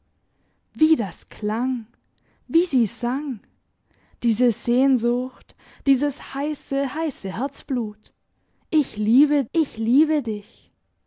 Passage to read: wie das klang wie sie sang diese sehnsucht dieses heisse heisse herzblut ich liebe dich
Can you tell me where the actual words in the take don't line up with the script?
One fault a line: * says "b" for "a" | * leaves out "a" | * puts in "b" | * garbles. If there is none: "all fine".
* puts in "ich liebe"